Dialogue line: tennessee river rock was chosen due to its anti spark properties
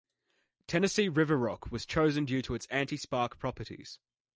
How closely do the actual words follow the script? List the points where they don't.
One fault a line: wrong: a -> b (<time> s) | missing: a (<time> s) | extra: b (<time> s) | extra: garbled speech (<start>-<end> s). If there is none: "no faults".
no faults